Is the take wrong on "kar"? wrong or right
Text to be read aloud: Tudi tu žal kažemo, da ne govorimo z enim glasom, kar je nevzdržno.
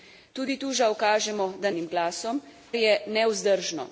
wrong